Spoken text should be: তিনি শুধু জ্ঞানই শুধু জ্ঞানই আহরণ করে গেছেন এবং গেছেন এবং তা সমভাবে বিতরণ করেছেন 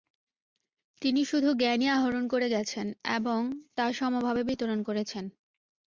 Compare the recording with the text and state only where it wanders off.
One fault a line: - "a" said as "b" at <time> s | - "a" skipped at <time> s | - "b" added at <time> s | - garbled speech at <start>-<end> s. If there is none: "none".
- "শুধু জ্ঞানই" skipped at 1.9 s
- "গেছেন এবং" skipped at 3.4 s